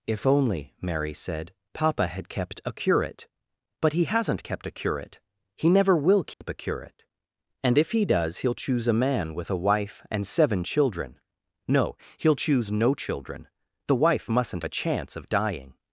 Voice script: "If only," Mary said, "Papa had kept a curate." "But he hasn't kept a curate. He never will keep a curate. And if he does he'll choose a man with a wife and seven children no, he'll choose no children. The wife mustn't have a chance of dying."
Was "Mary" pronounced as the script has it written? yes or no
yes